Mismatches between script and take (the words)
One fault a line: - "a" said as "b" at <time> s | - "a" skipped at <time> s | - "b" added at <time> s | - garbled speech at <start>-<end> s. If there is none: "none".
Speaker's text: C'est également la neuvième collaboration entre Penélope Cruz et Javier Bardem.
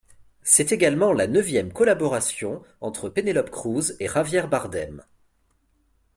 none